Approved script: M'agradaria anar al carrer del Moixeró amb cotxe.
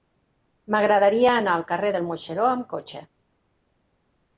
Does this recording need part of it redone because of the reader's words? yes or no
no